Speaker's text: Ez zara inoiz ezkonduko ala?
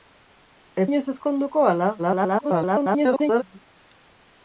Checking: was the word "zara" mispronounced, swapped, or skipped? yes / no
yes